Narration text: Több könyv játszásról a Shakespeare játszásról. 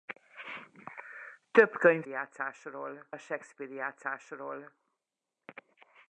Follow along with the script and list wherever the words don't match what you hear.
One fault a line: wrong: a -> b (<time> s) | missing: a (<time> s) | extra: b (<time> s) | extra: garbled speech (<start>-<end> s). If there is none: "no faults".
no faults